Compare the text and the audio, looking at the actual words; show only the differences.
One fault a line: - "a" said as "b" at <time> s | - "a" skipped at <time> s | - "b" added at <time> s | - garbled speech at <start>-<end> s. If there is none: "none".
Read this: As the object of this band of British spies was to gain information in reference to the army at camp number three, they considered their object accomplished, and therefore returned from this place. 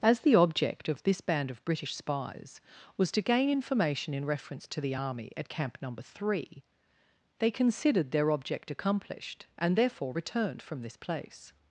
none